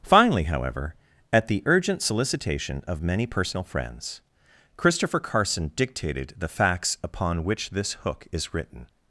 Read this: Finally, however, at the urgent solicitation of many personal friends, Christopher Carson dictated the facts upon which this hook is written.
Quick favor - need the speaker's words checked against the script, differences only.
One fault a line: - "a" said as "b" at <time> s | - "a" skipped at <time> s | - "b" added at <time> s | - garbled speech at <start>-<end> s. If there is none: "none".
none